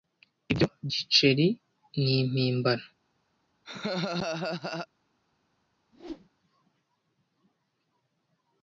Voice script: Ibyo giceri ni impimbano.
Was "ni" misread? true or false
false